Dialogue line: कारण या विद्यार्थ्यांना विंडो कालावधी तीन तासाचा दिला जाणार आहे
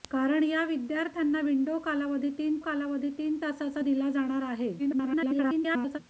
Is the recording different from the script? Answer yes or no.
yes